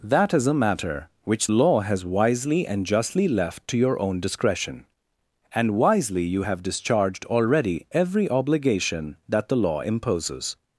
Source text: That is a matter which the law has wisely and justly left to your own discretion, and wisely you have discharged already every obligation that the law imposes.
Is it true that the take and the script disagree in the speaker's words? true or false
true